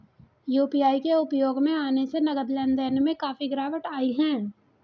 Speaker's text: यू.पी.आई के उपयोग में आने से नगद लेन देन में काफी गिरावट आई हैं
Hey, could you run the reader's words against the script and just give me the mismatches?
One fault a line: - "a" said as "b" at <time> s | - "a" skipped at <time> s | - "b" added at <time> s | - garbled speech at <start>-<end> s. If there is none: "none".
none